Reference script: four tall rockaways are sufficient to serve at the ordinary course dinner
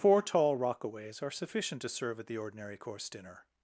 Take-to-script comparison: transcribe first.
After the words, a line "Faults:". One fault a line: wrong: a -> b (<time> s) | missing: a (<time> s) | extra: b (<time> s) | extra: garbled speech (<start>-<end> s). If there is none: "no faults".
four tall rockaways are sufficient to serve at the ordinary course dinner
Faults:
no faults